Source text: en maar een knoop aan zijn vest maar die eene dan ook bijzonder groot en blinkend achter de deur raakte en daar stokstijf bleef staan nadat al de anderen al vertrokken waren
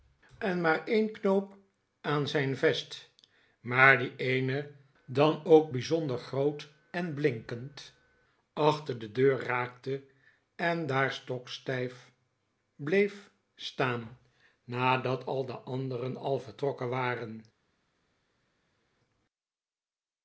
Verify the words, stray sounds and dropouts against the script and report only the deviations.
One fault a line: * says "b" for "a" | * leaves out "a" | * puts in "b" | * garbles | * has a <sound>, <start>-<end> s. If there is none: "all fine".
all fine